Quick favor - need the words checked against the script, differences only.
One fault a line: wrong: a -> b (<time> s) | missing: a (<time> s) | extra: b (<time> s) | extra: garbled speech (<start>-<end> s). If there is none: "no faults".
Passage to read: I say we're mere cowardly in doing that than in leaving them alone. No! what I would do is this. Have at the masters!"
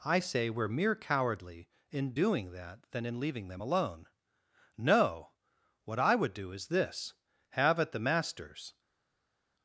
no faults